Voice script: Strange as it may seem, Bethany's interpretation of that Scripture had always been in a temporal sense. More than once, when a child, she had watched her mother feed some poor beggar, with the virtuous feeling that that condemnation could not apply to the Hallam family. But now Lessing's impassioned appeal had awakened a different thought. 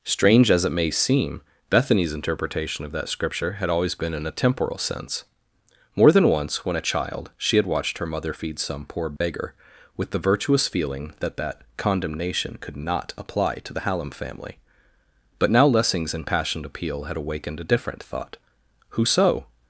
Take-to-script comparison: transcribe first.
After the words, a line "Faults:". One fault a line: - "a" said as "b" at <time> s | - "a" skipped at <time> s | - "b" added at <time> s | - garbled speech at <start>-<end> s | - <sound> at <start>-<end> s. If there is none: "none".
Strange as it may seem, Bethany's interpretation of that Scripture had always been in a temporal sense. More than once, when a child, she had watched her mother feed some poor beggar, with the virtuous feeling that that condemnation could not apply to the Hallam family. But now Lessing's impassioned appeal had awakened a different thought. Who so
Faults:
- dropout at 9.2-9.2 s
- "Who so" added at 18.9 s